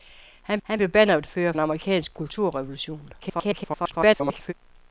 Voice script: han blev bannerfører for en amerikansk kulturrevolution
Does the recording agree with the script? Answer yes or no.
no